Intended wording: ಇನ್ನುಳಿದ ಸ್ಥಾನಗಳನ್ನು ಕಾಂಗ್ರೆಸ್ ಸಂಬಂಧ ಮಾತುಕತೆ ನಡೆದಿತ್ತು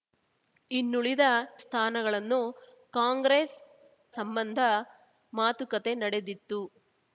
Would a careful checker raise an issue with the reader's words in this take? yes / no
no